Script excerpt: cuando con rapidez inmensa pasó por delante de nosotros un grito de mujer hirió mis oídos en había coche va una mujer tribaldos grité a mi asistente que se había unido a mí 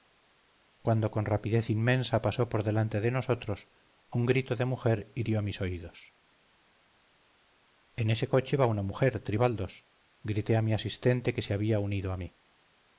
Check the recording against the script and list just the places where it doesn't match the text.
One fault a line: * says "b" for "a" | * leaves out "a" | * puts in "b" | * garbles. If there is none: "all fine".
* says "ese" for "había"